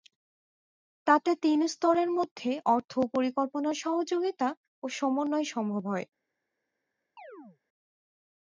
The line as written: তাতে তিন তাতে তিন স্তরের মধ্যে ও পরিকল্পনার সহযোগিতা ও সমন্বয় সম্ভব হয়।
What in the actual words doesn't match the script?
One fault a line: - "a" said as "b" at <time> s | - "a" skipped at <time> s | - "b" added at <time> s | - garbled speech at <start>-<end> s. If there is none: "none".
- "তাতে তিন" skipped at 1.6 s
- "অর্থ" added at 2.7 s